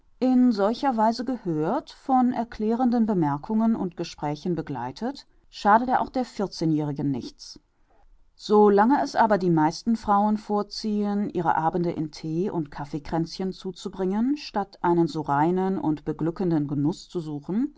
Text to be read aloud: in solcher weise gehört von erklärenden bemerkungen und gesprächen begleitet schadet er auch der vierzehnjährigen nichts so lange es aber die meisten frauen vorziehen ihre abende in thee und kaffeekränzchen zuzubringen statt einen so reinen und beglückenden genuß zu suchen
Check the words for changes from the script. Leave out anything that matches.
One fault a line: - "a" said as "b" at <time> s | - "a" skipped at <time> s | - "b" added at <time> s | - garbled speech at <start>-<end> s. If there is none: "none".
none